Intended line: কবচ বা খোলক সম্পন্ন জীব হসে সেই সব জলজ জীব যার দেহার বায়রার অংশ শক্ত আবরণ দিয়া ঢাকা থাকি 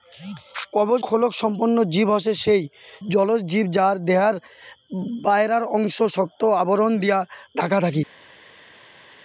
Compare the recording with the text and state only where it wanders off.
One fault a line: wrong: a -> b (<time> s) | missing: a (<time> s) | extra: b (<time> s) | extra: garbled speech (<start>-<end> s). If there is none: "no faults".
missing: বা (1.0 s)
missing: সব (2.6 s)